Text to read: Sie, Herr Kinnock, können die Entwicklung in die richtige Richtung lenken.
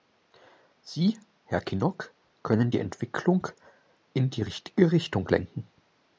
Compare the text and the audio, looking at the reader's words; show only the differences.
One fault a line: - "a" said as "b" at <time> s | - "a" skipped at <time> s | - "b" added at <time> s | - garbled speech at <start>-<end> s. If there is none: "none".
none